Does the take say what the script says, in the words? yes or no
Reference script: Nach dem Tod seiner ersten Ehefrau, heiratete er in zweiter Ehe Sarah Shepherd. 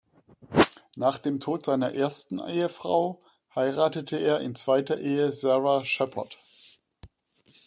yes